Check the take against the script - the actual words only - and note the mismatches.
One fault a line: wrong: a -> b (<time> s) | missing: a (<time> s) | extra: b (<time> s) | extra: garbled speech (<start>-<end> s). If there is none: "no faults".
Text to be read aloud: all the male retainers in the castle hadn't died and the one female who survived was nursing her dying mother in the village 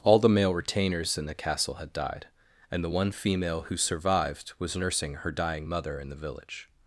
wrong: hadn't -> had (1.8 s)